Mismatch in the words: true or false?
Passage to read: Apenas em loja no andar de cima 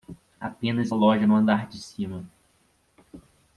false